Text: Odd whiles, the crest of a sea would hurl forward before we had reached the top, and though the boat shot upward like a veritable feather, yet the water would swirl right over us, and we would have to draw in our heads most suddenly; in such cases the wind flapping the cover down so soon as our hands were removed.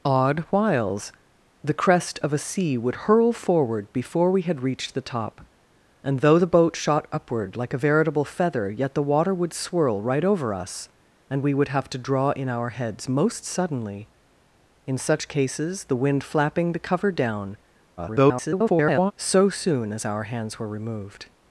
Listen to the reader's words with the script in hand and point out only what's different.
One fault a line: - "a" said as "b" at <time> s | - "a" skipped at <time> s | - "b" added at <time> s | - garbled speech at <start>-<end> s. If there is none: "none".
- garbled speech at 18.0-19.1 s